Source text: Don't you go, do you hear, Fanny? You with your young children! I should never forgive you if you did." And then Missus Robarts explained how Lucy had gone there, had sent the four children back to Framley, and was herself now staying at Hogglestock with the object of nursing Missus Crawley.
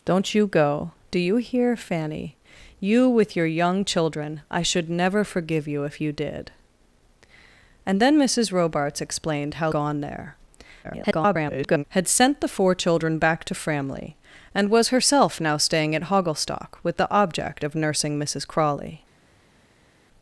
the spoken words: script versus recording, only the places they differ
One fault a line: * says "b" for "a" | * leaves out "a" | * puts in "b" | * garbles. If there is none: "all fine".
* leaves out "Lucy had"
* garbles